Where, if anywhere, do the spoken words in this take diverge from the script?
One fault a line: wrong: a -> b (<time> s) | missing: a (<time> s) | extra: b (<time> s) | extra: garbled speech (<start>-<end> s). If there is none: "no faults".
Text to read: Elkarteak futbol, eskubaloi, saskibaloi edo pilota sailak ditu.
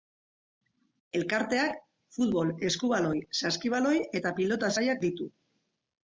wrong: edo -> eta (4.2 s)